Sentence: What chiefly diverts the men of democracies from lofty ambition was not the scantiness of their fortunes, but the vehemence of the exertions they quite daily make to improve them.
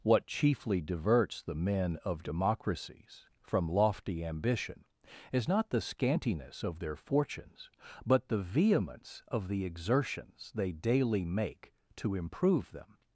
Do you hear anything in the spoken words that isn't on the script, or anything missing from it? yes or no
yes